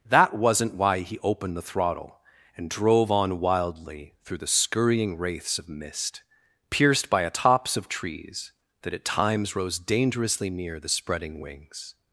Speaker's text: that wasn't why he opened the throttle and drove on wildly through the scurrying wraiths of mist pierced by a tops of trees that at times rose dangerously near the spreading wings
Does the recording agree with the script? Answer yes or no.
yes